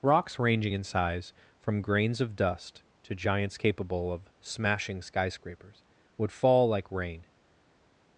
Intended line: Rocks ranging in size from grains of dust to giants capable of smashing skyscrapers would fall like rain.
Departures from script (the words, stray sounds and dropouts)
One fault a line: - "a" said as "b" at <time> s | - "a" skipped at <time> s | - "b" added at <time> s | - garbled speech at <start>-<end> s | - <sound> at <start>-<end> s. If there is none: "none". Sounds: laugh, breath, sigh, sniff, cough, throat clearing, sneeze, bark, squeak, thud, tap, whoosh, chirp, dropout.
none